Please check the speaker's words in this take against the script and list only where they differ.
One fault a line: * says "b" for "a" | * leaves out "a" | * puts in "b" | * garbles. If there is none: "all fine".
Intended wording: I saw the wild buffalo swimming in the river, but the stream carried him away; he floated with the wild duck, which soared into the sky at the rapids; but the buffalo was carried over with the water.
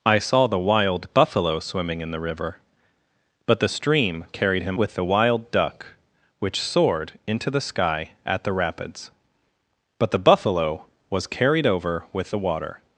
* leaves out "away he floated"